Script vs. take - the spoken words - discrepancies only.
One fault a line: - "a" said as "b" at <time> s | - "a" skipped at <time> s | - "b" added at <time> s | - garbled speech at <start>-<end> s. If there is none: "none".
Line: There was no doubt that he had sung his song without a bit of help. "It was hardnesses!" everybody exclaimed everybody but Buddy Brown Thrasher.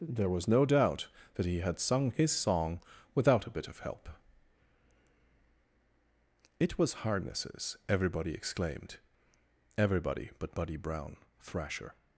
none